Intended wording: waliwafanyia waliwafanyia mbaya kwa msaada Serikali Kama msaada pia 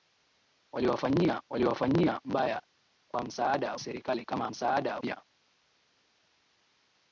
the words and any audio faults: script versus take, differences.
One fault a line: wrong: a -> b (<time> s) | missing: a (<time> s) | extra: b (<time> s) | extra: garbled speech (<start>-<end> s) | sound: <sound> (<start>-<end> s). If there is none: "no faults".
no faults